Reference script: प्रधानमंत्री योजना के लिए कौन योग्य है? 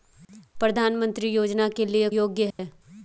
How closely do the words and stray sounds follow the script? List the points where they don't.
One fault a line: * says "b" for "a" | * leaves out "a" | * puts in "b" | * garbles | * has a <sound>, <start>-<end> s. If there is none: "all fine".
* leaves out "कौन"
* has a dropout, 2.5-2.6 s